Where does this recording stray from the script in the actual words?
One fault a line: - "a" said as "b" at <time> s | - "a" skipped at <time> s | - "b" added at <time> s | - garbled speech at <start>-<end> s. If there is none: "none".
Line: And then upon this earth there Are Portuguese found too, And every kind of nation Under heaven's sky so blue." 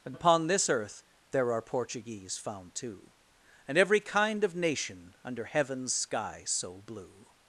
- "then" skipped at 0.1 s